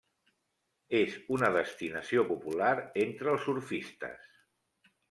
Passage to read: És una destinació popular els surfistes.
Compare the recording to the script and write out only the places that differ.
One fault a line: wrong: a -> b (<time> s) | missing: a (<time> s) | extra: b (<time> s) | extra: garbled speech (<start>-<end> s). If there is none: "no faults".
extra: entre (3.1 s)